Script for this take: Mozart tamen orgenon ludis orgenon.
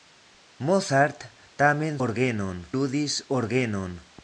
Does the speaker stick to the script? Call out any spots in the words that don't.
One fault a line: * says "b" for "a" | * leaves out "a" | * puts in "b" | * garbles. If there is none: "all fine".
all fine